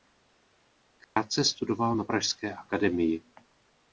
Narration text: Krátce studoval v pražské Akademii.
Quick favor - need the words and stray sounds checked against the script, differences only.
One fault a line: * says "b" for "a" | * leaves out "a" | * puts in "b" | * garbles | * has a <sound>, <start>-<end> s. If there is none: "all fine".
* has a dropout, 1.0-1.2 s
* says "na" for "v"